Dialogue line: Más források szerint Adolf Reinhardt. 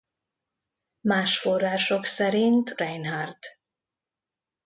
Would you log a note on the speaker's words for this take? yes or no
yes